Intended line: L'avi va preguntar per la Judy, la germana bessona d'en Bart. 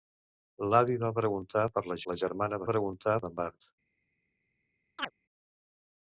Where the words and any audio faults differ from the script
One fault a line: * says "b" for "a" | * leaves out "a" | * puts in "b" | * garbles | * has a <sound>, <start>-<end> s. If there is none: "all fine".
* leaves out "Judy"
* says "preguntar" for "bessona"
* has a chirp, 5.0-5.1 s